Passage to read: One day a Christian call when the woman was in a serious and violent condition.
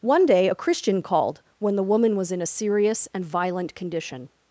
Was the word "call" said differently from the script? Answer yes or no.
yes